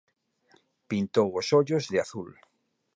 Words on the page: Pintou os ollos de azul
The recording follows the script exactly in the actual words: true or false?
true